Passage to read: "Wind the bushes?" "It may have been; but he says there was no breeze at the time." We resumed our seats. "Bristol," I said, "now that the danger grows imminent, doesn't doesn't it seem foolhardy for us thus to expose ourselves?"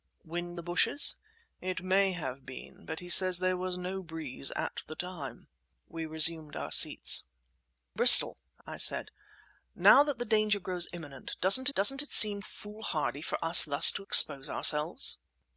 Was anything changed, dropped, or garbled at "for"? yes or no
no